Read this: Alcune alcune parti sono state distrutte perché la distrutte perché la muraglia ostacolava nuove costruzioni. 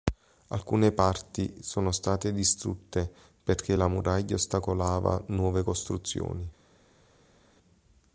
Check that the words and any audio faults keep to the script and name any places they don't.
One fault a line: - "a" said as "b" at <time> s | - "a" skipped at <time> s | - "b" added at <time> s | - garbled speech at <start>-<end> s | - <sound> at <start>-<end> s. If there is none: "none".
- "alcune" skipped at 0.9 s
- "distrutte perché la" skipped at 3.9 s